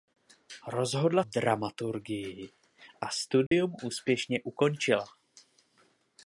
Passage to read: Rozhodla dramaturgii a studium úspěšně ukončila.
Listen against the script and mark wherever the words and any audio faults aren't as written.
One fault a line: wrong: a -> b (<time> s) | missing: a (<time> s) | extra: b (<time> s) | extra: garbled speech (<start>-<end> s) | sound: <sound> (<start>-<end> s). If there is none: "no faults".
sound: dropout (3.5-3.5 s)